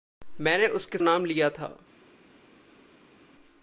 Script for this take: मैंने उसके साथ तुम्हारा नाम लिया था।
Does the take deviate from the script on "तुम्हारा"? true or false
true